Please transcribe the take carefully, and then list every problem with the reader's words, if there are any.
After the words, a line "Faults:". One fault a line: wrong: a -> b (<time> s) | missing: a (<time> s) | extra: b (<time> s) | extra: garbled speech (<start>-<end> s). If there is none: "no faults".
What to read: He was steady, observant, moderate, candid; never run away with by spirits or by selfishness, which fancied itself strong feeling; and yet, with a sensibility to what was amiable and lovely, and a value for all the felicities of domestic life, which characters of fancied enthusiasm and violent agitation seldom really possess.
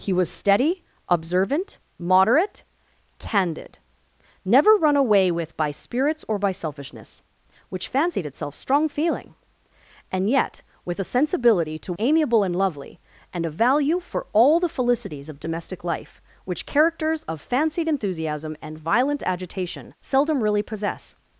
He was steady, observant, moderate, candid; never run away with by spirits or by selfishness, which fancied itself strong feeling; and yet, with a sensibility to amiable and lovely, and a value for all the felicities of domestic life, which characters of fancied enthusiasm and violent agitation seldom really possess.
Faults:
missing: what was (11.9 s)